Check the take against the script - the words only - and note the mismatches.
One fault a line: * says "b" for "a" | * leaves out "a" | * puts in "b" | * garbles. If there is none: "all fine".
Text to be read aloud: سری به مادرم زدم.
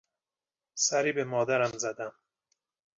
all fine